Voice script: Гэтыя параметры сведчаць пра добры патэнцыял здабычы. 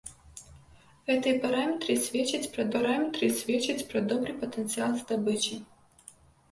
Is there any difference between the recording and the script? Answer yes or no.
yes